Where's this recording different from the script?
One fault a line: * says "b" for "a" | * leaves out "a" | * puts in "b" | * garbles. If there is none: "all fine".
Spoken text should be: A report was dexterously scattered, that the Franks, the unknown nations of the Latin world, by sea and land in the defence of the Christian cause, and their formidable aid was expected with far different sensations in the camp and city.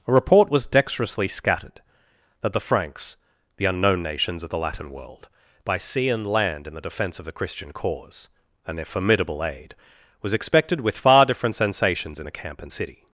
all fine